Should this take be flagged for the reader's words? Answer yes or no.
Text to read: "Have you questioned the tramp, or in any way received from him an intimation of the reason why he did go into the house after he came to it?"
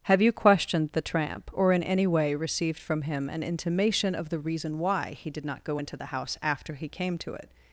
yes